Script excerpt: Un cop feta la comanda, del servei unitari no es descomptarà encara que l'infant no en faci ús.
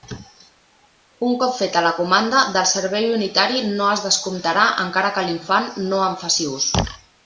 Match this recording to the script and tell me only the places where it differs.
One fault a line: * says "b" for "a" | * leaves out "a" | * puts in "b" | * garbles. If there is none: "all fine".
all fine